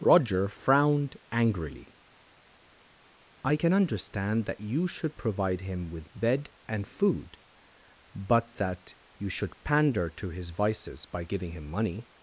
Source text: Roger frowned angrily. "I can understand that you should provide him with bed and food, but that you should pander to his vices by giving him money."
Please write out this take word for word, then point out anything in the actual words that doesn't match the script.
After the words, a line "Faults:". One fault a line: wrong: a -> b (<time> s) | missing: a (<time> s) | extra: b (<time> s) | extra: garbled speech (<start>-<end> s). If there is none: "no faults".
Roger frowned angrily. "I can understand that you should provide him with bed and food, but that you should pander to his vices by giving him money."
Faults:
no faults